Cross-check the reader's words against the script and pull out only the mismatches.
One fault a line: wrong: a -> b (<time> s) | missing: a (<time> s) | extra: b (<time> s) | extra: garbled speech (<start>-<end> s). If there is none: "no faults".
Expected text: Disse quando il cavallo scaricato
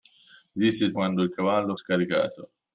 no faults